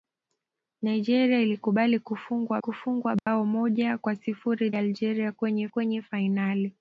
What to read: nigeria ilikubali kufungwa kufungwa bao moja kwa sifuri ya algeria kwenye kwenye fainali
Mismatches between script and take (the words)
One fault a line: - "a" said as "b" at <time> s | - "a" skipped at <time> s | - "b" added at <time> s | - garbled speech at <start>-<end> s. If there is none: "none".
none